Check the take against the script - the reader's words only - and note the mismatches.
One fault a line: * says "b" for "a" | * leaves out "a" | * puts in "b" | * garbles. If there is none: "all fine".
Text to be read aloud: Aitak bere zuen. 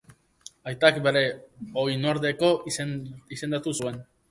* puts in "oinordeko izendatu"